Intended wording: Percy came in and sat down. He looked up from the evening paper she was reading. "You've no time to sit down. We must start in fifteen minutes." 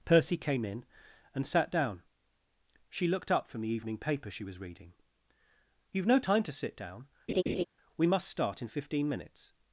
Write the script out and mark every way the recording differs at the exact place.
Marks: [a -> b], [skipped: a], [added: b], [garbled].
Percy came in and sat down. [He -> She] looked up from the evening paper she was reading. "You've no time to sit down. We must start in fifteen minutes."